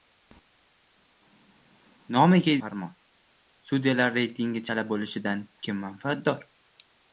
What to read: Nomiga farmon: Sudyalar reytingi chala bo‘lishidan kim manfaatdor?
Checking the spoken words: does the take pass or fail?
pass